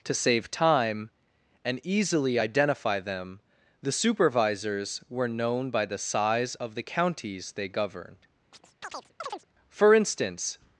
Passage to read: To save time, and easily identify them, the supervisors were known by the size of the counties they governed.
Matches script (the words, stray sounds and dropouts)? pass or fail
fail